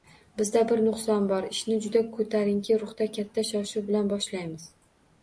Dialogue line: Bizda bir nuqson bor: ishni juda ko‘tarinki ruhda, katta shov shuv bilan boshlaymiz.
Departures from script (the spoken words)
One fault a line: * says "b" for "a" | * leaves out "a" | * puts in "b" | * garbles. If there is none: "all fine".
all fine